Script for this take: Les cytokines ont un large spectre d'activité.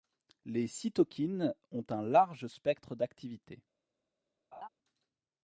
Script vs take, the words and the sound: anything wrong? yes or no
yes